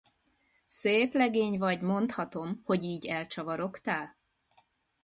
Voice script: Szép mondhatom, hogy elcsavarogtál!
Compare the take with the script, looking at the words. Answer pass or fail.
fail